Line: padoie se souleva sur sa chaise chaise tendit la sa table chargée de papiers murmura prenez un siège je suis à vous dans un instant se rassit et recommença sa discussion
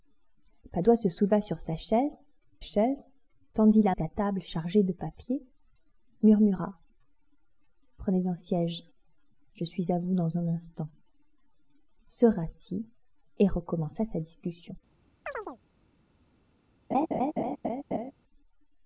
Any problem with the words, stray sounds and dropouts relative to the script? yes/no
yes